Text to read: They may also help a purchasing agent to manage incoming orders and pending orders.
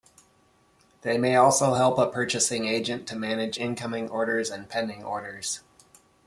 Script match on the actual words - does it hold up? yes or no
yes